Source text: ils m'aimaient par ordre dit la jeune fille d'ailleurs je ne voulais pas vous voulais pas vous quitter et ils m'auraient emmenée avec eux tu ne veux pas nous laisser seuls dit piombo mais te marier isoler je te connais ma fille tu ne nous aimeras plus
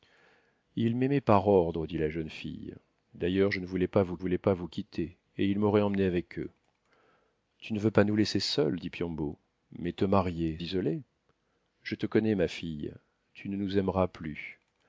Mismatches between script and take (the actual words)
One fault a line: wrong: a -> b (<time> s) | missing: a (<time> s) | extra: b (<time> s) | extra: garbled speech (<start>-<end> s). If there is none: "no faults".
no faults